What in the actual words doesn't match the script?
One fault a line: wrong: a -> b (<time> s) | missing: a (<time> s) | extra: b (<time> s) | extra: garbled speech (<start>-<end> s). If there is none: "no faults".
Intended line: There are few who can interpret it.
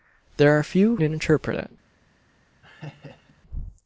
missing: who can (0.9 s)